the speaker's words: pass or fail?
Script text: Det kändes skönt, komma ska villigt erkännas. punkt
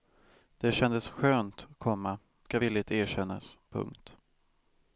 pass